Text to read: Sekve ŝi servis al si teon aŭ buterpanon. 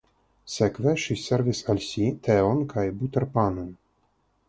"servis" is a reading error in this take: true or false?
false